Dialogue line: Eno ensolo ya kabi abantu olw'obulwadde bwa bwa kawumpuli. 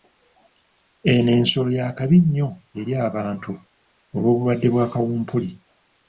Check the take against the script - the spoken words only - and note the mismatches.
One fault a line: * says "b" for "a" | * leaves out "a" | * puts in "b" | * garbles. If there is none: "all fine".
* puts in "nnyo eri"
* leaves out "bwa"